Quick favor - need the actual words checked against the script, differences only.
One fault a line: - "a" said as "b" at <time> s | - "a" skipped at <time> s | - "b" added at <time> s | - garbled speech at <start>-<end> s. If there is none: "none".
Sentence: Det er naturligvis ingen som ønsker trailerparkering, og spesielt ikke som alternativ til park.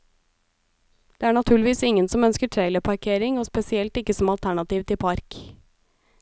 none